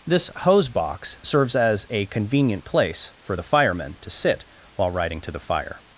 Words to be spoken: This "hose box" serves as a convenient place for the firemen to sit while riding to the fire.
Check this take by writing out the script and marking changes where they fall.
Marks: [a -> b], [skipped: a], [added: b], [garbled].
This "hose box" serves as a convenient place for the firemen to sit while riding to the fire.